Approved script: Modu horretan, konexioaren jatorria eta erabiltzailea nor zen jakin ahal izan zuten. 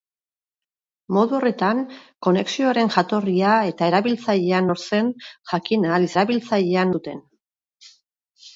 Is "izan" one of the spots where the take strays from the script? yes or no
yes